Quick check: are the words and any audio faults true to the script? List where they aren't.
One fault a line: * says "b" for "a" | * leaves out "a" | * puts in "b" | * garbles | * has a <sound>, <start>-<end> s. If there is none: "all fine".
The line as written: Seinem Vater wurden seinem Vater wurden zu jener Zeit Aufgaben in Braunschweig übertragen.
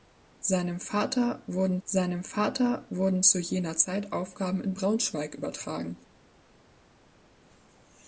all fine